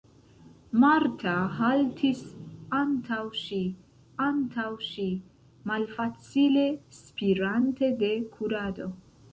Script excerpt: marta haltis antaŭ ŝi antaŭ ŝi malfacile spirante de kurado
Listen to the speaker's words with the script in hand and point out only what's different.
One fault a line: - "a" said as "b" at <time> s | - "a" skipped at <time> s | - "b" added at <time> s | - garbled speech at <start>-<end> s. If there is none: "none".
none